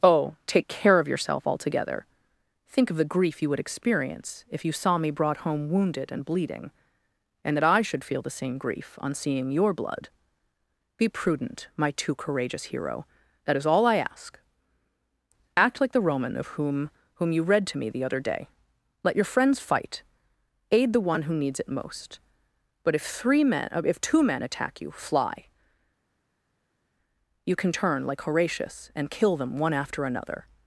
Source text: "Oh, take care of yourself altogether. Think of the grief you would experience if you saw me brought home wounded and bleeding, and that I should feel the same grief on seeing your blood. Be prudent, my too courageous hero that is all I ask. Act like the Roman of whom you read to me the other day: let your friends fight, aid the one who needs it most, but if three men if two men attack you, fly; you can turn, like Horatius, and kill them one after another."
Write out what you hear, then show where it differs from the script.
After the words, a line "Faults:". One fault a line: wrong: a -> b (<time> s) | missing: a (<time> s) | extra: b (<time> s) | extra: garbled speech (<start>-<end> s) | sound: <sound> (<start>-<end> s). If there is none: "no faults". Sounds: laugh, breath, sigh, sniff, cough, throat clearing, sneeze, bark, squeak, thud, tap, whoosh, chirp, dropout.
"Oh, take care of yourself altogether. Think of the grief you would experience if you saw me brought home wounded and bleeding, and that I should feel the same grief on seeing your blood. Be prudent, my too courageous hero that is all I ask. Act like the Roman of whom whom you read to me the other day: let your friends fight, aid the one who needs it most, but if three men if two men attack you, fly; you can turn, like Horatius, and kill them one after another."
Faults:
extra: whom (17.1 s)